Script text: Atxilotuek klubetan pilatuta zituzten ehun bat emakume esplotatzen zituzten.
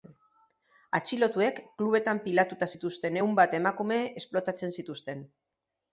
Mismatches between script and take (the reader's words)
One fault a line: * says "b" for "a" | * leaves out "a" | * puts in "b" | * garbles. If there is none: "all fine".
all fine